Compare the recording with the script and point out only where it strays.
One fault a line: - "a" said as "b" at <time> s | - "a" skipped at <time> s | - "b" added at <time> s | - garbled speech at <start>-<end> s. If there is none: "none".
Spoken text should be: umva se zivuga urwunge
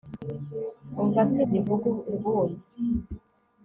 none